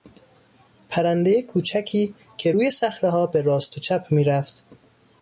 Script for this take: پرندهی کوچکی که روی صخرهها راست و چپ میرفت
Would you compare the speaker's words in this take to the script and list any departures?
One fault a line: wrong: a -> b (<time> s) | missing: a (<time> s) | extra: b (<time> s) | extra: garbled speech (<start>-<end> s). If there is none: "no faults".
extra: به (3.3 s)